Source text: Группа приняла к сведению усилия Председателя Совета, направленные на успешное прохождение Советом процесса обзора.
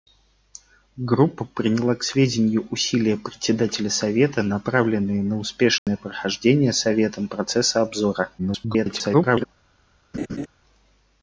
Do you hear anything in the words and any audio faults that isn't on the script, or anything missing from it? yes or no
yes